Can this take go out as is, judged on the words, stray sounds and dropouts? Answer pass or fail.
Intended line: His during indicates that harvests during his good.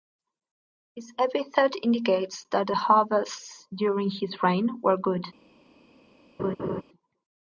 fail